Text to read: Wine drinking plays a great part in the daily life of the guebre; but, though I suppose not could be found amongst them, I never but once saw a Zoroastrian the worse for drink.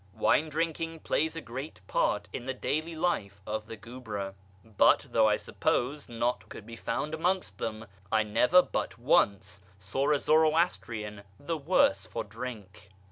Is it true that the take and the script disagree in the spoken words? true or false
false